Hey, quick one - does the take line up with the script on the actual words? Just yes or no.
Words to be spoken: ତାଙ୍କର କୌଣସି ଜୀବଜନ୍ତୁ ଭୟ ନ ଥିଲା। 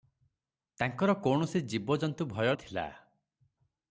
no